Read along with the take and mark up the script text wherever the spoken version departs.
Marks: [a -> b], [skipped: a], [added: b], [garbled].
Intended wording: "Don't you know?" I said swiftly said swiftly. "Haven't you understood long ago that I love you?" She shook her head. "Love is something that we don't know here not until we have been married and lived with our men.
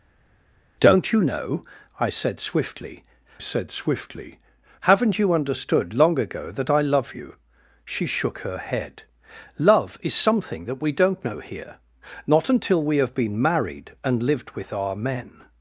"Don't you know?" I said swiftly said swiftly. "Haven't you understood long ago that I love you?" She shook her head. "Love is something that we don't know here not until we have been married and lived with our men.